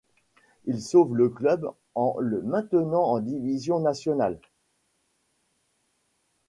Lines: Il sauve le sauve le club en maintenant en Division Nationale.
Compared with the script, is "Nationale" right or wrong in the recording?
right